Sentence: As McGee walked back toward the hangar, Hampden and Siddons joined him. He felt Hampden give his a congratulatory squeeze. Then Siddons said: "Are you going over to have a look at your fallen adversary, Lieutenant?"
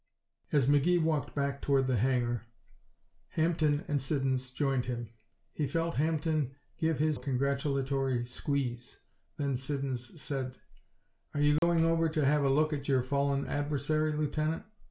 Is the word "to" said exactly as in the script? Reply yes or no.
yes